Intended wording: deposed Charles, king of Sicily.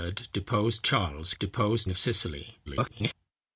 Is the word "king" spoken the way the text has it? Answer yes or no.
no